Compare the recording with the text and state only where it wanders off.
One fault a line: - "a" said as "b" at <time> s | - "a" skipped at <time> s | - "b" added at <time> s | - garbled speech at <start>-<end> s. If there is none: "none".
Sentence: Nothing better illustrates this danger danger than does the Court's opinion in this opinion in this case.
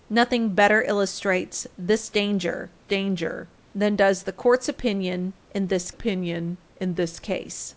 none